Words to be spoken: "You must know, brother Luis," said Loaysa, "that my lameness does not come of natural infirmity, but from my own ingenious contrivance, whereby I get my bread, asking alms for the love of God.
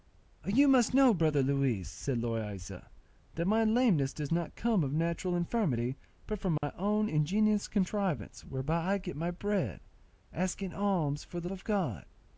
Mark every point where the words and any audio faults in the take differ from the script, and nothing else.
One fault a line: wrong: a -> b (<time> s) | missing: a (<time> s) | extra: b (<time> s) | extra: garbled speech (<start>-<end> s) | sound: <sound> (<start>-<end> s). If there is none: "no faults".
sound: dropout (6.6-6.6 s)
missing: love (11.5 s)